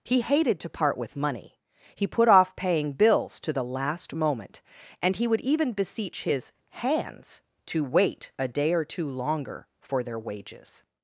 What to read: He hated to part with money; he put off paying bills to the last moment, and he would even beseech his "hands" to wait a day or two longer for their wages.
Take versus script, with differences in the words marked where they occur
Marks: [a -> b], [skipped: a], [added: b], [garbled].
He hated to part with money; he put off paying bills to the last moment, and he would even beseech his "hands" to wait a day or two longer for their wages.